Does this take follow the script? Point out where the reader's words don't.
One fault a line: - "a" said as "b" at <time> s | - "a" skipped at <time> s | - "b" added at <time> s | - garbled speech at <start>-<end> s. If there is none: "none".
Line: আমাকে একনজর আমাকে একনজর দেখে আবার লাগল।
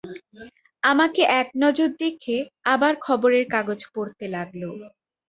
- "আমাকে একনজর দেখে আবার" said as "দেখে আবার খবরের কাগজ পড়তে" at 2.0 s